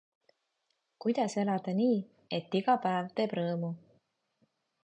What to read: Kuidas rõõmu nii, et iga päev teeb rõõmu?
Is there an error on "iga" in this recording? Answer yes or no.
no